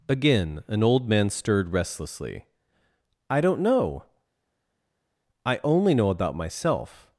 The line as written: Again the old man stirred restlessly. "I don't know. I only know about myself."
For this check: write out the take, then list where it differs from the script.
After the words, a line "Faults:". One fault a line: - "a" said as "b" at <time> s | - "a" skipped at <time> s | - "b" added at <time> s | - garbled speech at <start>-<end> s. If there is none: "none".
Again an old man stirred restlessly. "I don't know. I only know about myself."
Faults:
- "the" said as "an" at 0.7 s